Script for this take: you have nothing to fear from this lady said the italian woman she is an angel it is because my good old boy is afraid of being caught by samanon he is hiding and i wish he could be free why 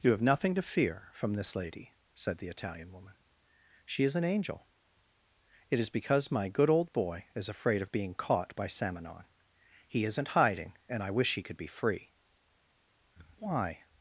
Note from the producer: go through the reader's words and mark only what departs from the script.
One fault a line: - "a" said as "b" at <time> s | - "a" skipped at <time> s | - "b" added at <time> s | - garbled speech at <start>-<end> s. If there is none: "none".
- "is" said as "isn't" at 10.1 s